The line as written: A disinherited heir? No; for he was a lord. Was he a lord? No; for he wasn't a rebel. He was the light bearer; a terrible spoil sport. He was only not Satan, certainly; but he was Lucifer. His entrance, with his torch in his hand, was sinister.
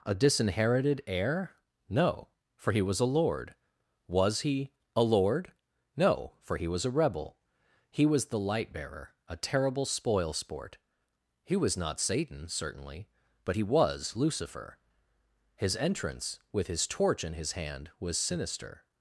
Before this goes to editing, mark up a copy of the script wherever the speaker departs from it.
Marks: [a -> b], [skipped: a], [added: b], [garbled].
A disinherited heir? No; for he was a lord. Was he a lord? No; for he [wasn't -> was] a rebel. He was the light bearer; a terrible spoil sport. He was [skipped: only] not Satan, certainly; but he was Lucifer. His entrance, with his torch in his hand, was sinister.